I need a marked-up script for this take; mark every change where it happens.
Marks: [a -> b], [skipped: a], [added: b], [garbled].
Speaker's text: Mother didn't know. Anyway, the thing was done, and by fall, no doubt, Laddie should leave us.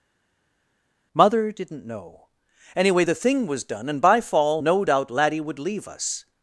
Mother didn't know. Anyway, the thing was done, and by fall, no doubt, Laddie [should -> would] leave us.